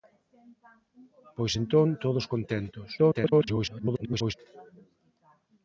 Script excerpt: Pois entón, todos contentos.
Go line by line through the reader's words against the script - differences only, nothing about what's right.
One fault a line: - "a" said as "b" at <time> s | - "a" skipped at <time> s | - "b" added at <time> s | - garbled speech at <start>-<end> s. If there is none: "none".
- garbled speech at 3.0-4.3 s